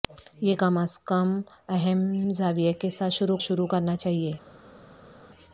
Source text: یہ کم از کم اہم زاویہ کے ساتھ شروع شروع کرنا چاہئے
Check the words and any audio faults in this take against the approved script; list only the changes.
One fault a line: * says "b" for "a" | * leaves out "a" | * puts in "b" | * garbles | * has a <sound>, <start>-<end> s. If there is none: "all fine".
all fine